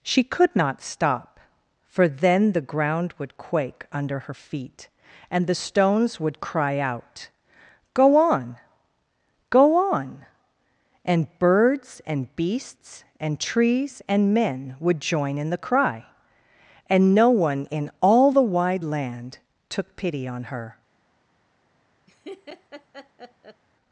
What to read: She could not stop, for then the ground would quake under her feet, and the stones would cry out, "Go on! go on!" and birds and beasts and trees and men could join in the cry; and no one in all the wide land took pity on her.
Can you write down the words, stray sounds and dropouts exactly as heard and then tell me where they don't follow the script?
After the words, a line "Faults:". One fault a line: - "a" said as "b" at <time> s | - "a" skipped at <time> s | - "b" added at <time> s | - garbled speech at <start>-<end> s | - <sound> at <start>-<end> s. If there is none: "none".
She could not stop, for then the ground would quake under her feet, and the stones would cry out, "Go on! go on!" and birds and beasts and trees and men would join in the cry; and no one in all the wide land took pity on her.
Faults:
- "could" said as "would" at 14.8 s
- laugh at 22.1-23.6 s